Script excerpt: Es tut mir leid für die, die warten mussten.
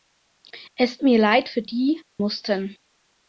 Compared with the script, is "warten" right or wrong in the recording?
wrong